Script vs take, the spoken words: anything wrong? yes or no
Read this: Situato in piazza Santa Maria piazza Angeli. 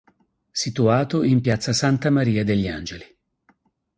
yes